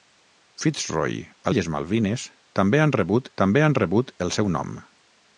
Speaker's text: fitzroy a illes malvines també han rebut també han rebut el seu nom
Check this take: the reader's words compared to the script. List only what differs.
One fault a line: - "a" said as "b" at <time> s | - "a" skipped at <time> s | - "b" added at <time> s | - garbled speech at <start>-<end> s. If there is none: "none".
none